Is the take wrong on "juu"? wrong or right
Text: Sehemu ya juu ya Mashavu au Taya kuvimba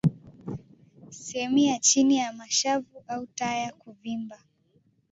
wrong